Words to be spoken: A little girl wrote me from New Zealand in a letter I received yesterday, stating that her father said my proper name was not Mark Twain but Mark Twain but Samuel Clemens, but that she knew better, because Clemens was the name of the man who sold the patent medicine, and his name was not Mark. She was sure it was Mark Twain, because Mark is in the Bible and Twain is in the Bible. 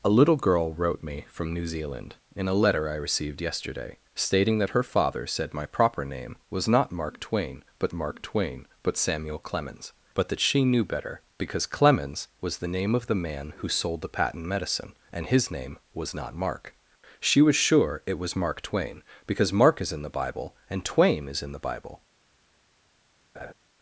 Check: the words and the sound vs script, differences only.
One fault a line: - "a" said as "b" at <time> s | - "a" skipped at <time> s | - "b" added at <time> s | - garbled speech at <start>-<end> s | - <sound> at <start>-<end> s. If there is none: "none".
- laugh at 23.3-23.5 s